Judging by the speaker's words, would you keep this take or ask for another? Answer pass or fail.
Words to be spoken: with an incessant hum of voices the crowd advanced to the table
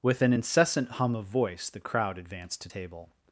fail